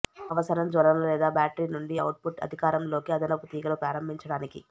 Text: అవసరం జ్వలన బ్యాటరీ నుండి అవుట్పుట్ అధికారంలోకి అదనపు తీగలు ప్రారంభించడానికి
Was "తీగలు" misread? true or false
false